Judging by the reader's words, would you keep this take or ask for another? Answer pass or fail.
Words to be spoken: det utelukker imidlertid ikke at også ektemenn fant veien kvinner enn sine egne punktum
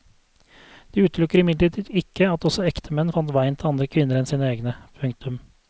fail